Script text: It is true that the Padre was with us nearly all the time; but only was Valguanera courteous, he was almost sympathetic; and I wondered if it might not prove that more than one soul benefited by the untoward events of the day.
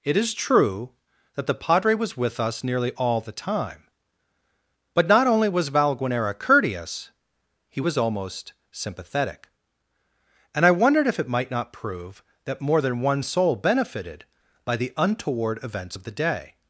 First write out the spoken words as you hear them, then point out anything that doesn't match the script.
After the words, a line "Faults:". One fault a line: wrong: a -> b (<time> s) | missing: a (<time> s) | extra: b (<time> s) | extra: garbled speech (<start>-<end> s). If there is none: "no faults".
It is true that the Padre was with us nearly all the time; but not only was Valguanera courteous, he was almost sympathetic; and I wondered if it might not prove that more than one soul benefited by the untoward events of the day.
Faults:
extra: not (5.1 s)